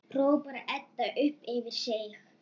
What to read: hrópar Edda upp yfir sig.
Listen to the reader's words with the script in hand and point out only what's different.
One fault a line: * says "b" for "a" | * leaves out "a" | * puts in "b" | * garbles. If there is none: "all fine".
all fine